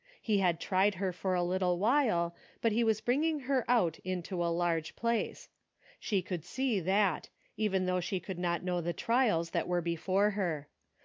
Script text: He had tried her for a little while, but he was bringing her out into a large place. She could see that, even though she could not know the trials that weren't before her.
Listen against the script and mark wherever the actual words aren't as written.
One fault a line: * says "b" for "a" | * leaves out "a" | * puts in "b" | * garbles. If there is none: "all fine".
* says "were" for "weren't"